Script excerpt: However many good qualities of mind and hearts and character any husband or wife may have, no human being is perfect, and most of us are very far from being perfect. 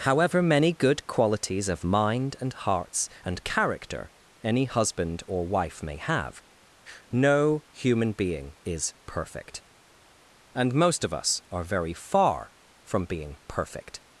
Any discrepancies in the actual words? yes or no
no